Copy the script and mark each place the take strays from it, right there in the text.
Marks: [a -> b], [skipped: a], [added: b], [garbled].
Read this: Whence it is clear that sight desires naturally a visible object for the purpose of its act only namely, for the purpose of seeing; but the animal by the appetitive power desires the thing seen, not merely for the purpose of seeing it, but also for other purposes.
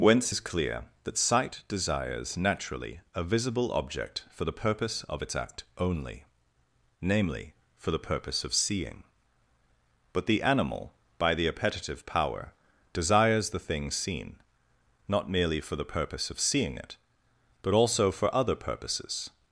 Whence [skipped: it] is clear that sight desires naturally a visible object for the purpose of its act only namely, for the purpose of seeing; but the animal by the appetitive power desires the thing seen, not merely for the purpose of seeing it, but also for other purposes.